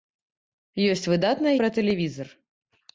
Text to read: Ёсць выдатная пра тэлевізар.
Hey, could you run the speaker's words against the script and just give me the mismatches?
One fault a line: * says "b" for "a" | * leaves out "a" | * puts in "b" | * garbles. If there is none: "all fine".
all fine